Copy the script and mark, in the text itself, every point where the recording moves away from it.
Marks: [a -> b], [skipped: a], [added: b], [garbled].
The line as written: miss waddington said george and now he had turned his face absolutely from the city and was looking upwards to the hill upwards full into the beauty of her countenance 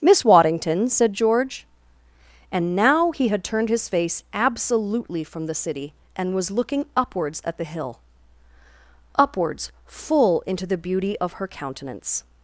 miss waddington said george and now he had turned his face absolutely from the city and was looking upwards [to -> at] the hill upwards full into the beauty of her countenance